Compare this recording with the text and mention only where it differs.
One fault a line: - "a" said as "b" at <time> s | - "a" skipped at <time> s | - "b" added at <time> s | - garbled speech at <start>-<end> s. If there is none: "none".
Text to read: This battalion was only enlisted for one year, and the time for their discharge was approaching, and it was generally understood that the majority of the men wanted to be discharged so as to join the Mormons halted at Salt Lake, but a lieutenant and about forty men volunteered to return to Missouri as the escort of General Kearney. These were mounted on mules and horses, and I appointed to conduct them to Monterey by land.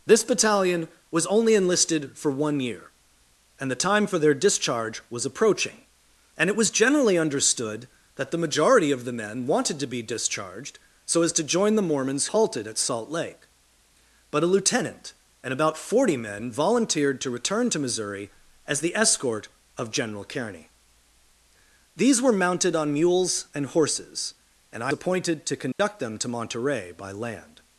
none